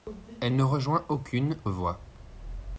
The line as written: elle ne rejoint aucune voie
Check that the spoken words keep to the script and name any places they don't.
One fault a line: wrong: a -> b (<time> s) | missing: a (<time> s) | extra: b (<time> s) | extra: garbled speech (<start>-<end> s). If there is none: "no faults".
no faults